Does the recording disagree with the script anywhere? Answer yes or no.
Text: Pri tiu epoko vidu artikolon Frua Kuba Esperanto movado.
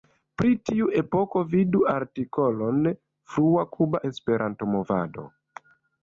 no